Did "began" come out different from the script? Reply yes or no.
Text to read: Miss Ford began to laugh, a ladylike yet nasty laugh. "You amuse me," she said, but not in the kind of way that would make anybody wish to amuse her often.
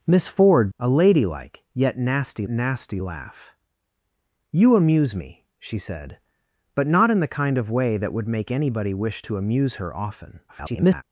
yes